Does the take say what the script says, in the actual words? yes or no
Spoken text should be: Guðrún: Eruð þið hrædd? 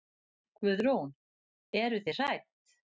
yes